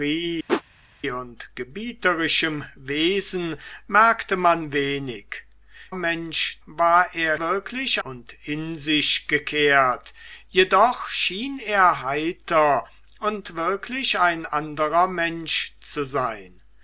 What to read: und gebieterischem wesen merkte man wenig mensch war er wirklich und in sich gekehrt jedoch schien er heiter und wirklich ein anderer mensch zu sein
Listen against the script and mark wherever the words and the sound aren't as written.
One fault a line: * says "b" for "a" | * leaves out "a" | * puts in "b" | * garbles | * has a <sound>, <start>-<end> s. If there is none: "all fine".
* has a whoosh, 0.5-0.6 s